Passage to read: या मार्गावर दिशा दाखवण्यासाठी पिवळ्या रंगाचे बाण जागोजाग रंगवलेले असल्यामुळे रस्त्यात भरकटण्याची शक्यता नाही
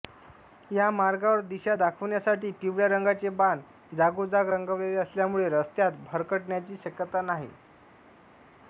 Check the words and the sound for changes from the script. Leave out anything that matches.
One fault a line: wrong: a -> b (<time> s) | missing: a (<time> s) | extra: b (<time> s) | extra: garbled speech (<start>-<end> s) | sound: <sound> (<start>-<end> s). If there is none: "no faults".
no faults